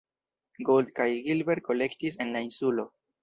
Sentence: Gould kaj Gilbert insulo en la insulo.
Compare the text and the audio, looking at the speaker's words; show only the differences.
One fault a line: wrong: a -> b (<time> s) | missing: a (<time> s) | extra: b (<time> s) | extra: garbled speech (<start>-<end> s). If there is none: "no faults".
wrong: insulo -> kolektis (1.7 s)